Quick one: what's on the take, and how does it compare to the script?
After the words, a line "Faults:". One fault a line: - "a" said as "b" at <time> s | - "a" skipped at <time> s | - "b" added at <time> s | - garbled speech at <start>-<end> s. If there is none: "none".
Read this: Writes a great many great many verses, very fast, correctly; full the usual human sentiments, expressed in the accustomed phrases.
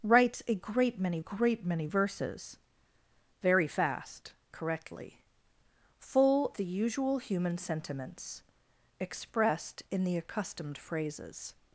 Writes a great many great many verses, very fast, correctly; full the usual human sentiments, expressed in the accustomed phrases.
Faults:
none